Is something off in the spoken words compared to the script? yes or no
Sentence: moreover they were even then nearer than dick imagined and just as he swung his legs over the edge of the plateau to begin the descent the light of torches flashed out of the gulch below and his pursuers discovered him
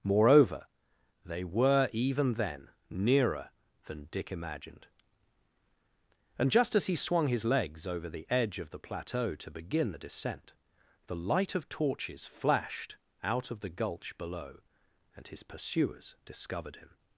no